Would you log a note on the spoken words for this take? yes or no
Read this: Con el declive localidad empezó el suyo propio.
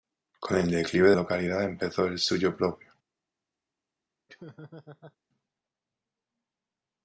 no